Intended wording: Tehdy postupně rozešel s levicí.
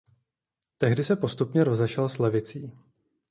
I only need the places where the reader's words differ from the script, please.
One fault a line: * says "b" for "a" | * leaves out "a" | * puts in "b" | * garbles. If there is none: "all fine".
* puts in "se"